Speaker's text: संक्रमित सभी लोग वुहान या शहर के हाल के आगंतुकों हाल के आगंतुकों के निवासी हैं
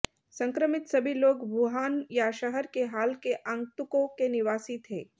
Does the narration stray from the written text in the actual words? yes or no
yes